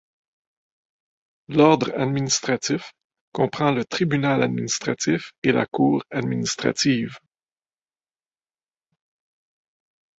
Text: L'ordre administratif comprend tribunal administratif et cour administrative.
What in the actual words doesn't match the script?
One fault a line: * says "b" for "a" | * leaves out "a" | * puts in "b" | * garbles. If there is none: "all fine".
* puts in "le"
* puts in "la"